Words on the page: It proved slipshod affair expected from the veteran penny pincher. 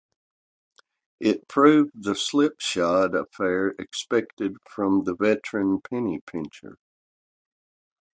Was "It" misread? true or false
false